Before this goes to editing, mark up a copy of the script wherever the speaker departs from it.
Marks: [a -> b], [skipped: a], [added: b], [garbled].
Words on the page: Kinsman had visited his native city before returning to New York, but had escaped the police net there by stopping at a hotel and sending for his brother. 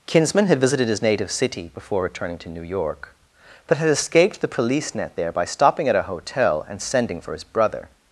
Kinsman had visited his native city before returning to New York, but had escaped the police net there by stopping at a hotel and sending for his brother.